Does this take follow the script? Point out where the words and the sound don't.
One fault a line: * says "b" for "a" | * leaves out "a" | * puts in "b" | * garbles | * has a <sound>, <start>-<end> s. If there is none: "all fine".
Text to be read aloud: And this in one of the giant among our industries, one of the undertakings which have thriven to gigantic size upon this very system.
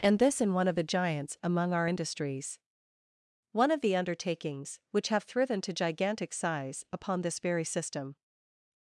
* says "giants" for "giant"